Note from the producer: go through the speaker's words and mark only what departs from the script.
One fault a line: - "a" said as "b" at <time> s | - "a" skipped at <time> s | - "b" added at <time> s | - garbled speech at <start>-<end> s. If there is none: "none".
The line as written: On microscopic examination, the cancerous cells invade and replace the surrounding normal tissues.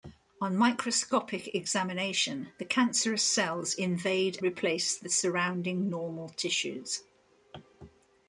- "and" skipped at 4.4 s